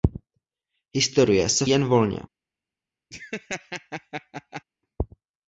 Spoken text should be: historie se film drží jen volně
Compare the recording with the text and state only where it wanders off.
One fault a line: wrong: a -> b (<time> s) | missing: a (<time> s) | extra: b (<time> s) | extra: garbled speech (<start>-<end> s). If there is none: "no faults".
missing: film drží (1.6 s)